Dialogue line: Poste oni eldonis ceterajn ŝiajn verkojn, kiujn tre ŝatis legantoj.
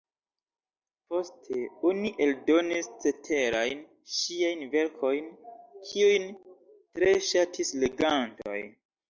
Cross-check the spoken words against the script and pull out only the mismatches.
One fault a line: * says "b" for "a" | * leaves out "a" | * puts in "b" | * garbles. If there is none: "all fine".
all fine